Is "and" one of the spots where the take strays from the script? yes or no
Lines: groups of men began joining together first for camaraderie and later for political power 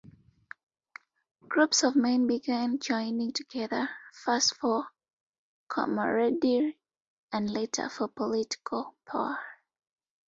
no